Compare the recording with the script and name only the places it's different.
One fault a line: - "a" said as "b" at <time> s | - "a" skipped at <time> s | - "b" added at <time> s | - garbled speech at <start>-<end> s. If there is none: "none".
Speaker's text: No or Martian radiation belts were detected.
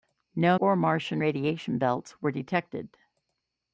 none